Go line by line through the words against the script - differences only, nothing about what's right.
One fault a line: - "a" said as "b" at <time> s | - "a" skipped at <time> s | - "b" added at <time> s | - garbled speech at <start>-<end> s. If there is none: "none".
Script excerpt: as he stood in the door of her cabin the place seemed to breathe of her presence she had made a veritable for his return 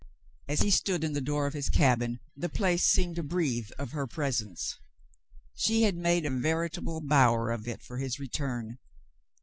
- "her" said as "his" at 1.5 s
- "bower of it" added at 7.0 s